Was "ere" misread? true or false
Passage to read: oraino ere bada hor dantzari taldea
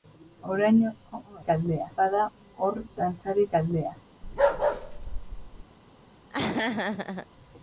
true